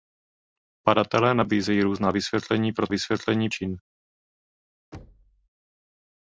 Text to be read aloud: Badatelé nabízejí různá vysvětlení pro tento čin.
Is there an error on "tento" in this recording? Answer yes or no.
yes